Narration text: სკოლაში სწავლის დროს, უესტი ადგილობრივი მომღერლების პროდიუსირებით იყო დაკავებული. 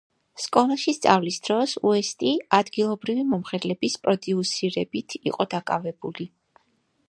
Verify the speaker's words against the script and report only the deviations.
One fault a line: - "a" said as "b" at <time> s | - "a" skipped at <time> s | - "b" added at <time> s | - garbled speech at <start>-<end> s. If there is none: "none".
none